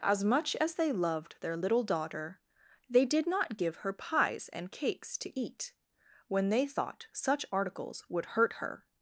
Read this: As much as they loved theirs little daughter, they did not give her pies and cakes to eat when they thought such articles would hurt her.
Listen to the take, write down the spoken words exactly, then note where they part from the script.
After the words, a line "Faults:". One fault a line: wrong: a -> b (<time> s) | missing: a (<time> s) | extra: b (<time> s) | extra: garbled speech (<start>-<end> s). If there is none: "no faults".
As much as they loved their little daughter, they did not give her pies and cakes to eat when they thought such articles would hurt her.
Faults:
wrong: theirs -> their (1.4 s)